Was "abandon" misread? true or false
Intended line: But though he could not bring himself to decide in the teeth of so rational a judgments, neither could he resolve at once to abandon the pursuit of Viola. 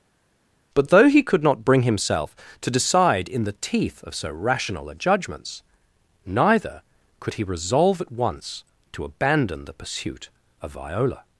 false